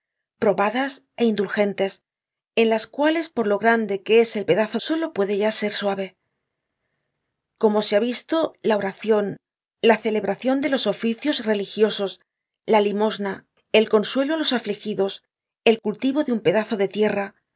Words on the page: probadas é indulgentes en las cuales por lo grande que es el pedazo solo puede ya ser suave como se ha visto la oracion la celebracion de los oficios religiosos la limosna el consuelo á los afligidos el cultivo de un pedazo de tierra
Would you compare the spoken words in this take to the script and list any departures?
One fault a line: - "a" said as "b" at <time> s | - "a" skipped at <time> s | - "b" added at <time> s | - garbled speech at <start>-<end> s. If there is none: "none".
none